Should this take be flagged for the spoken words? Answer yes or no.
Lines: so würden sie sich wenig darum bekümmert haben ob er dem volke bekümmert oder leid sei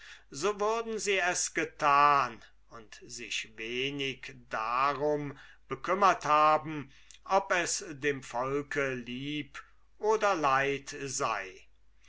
yes